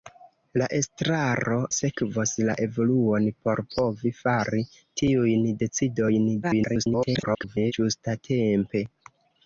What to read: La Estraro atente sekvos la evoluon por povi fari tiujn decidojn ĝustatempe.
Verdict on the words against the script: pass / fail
fail